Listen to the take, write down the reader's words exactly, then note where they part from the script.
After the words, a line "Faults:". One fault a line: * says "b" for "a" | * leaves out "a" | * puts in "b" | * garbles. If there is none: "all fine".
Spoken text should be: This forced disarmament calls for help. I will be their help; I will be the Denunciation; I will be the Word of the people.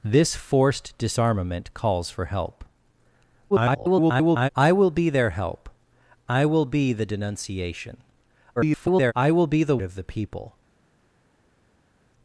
This forced disarmament calls for help. [garbled] I will be their help; I will be the Denunciation; [garbled] I will be the Of the people.
Faults:
* garbles
* garbles
* leaves out "Word"